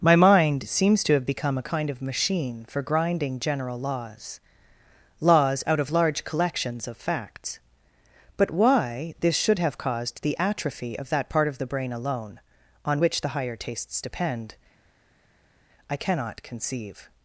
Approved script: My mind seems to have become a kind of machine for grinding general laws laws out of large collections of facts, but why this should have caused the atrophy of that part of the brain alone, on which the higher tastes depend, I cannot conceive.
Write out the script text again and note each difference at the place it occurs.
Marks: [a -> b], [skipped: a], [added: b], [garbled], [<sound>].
My mind seems to have become a kind of machine for grinding general laws laws out of large collections of facts, but why this should have caused the atrophy of that part of the brain alone, on which the higher tastes depend, I cannot conceive.